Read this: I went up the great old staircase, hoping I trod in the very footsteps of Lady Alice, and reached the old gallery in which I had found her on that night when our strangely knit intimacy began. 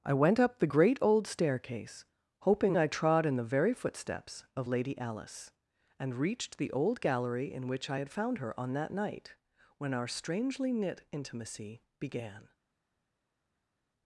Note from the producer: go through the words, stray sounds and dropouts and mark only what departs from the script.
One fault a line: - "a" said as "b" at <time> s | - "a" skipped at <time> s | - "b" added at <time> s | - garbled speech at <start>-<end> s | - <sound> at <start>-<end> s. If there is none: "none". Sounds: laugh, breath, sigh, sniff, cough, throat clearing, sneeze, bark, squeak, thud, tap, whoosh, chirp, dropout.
none